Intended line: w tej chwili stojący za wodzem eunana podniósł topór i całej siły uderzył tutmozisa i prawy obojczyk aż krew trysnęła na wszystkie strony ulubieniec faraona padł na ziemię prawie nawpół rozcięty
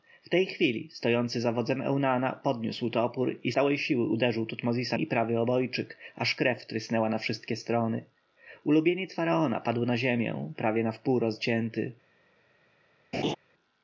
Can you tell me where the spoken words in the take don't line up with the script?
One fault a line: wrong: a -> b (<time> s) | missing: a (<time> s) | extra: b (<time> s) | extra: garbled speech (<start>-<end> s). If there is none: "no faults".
no faults